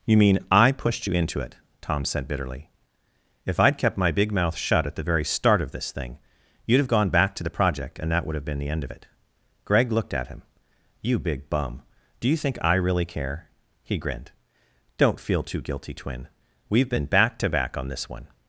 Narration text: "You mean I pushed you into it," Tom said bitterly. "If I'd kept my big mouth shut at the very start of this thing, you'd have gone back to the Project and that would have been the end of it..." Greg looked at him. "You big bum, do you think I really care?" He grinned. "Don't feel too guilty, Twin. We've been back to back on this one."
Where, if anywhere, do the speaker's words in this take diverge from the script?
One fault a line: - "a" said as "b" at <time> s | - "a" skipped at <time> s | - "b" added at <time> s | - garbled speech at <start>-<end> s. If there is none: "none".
none